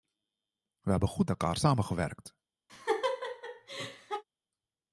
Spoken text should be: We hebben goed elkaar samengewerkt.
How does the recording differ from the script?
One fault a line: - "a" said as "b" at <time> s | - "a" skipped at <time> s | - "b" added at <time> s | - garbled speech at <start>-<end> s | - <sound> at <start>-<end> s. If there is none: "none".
- laugh at 2.7-4.2 s